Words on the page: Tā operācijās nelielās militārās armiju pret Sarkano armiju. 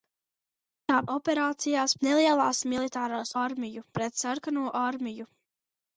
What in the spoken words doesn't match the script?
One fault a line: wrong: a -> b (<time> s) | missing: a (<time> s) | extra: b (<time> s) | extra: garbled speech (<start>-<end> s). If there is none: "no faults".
no faults